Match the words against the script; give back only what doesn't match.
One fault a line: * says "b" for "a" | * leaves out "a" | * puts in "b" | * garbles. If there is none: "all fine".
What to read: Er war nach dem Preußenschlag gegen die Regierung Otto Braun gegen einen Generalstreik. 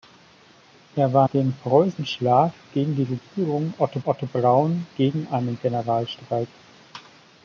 * leaves out "nach"
* puts in "Otto"